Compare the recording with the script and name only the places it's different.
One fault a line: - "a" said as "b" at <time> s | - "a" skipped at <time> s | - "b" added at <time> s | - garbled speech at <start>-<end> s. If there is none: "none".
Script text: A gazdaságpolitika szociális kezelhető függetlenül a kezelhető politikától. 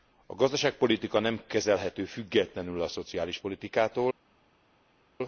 - "szociális" said as "nem" at 1.2 s
- "kezelhető" said as "szociális" at 2.9 s